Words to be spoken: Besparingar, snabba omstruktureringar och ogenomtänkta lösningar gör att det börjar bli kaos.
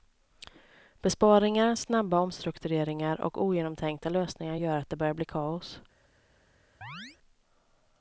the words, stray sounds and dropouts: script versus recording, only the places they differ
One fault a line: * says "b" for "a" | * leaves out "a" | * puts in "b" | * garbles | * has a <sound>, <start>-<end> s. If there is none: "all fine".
* has a chirp, 6.8-7.2 s